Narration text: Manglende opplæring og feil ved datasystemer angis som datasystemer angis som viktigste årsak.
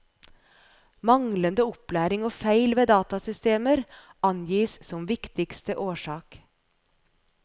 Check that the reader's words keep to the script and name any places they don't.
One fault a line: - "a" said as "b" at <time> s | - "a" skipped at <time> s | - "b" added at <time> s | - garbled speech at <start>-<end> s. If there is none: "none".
- "datasystemer angis som" skipped at 5.1 s